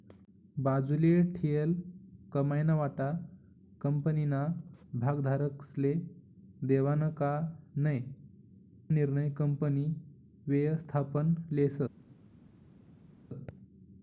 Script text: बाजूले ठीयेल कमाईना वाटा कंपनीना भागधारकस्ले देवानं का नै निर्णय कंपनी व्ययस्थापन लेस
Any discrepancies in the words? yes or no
no